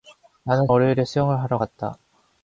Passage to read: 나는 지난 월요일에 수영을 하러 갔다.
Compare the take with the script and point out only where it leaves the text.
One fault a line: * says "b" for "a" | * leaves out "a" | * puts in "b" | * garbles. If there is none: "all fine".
* leaves out "지난"